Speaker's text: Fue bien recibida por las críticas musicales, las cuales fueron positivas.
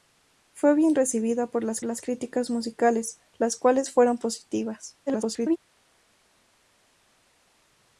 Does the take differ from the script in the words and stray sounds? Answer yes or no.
yes